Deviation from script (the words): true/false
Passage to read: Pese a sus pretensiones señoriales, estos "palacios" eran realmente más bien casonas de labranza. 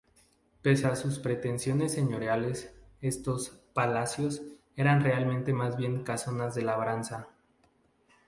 false